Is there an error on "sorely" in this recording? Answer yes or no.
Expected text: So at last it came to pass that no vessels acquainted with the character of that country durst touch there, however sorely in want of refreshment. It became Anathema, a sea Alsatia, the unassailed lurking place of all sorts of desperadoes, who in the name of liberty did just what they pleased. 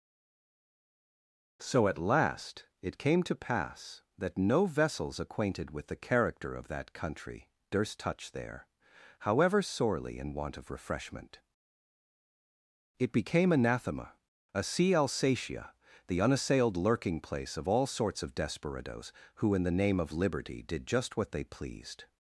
no